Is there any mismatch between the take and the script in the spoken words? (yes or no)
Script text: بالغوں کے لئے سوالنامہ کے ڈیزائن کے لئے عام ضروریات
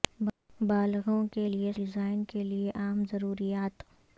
yes